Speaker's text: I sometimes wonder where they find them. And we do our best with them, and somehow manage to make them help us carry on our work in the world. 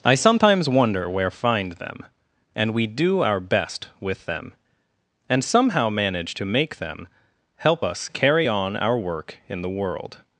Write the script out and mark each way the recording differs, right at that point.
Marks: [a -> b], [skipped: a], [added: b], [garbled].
I sometimes wonder where [skipped: they] find them. And we do our best with them, and somehow manage to make them help us carry on our work in the world.